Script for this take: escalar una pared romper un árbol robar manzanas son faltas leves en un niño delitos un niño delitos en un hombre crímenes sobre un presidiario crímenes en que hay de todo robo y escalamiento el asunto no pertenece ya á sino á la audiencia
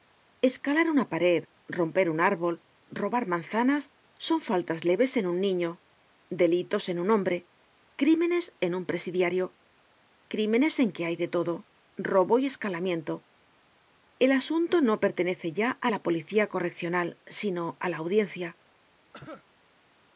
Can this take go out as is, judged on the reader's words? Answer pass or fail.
fail